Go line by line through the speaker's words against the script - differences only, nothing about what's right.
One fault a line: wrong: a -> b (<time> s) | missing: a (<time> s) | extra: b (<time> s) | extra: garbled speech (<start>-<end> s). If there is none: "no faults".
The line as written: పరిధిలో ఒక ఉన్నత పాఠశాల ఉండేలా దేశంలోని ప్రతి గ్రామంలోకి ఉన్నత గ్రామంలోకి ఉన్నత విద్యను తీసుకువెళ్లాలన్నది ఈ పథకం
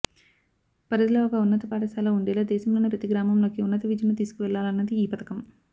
missing: గ్రామంలోకి ఉన్నత (3.8 s)